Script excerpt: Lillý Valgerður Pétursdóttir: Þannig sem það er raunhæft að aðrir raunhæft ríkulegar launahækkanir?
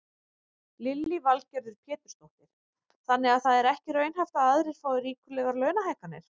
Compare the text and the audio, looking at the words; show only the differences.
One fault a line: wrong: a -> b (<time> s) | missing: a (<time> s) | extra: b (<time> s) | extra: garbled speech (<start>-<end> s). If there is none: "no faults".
wrong: sem -> að (3.4 s)
extra: ekki (3.7 s)
wrong: raunhæft -> fái (4.9 s)